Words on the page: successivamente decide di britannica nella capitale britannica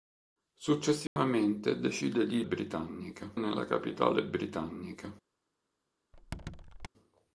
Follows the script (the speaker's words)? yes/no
yes